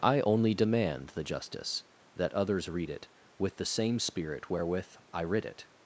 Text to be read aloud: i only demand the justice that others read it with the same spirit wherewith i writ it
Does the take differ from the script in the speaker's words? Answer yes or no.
no